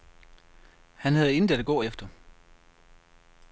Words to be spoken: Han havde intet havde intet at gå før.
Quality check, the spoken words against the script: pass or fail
fail